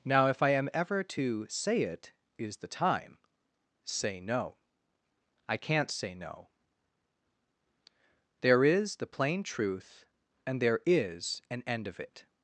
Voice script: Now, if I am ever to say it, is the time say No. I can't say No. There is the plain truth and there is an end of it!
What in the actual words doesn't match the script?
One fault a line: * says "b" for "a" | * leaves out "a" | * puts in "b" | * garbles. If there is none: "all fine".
all fine